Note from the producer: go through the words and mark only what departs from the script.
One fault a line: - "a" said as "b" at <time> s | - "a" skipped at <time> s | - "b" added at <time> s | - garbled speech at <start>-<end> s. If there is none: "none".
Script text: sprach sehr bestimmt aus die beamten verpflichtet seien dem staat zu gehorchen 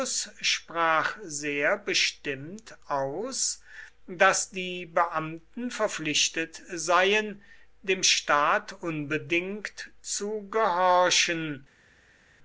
- "daß" added at 4.1 s
- "unbedingt" added at 8.7 s